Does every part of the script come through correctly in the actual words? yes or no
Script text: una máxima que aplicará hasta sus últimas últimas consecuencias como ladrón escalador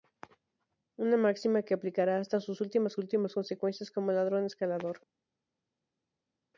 yes